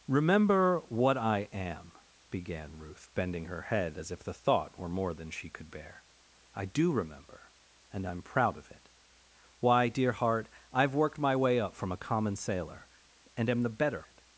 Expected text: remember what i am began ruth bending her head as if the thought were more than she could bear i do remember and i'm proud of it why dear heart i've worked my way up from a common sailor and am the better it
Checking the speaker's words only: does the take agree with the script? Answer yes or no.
yes